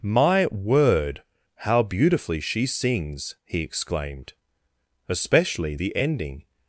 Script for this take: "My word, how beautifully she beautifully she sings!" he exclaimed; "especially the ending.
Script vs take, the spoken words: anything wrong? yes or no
yes